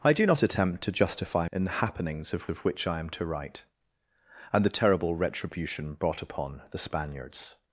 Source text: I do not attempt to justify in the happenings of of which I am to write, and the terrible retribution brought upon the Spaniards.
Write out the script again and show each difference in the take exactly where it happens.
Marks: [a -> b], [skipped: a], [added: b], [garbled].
I do not attempt to justify in the happenings of of which I am to write, and the terrible retribution brought upon the Spaniards.